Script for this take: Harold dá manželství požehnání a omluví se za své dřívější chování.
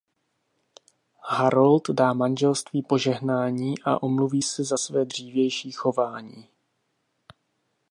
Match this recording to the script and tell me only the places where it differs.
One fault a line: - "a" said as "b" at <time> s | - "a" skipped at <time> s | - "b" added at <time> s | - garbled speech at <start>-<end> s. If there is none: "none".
none